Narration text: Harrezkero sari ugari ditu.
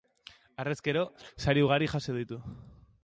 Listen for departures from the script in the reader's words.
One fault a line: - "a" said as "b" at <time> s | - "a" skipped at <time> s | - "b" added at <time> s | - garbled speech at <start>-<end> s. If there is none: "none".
- "jaso" added at 2.0 s